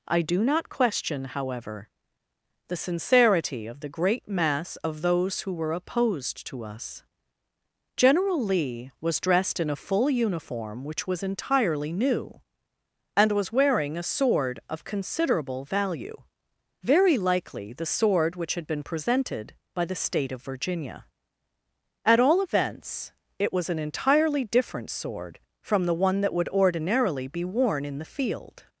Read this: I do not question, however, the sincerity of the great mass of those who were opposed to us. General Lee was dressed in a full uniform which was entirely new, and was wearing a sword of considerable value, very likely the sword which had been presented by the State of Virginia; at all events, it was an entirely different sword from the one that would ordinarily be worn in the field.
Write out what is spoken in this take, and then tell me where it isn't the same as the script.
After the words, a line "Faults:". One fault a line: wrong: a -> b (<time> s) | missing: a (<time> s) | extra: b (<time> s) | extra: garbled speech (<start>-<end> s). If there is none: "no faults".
I do not question, however, the sincerity of the great mass of those who were opposed to us. General Lee was dressed in a full uniform which was entirely new, and was wearing a sword of considerable value, very likely the sword which had been presented by the State of Virginia; at all events, it was an entirely different sword from the one that would ordinarily be worn in the field.
Faults:
no faults